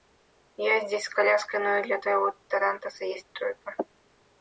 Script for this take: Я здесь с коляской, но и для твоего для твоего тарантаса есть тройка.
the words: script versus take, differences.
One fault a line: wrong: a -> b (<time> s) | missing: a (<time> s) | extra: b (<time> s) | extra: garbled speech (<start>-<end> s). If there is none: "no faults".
missing: для твоего (2.3 s)